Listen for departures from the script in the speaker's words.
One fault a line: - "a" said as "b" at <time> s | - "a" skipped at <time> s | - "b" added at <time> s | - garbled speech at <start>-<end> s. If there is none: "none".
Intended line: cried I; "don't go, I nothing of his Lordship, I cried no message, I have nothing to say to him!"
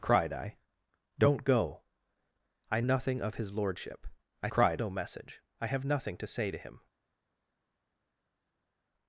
none